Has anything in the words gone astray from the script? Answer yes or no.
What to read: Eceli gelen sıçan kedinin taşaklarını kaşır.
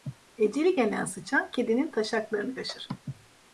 no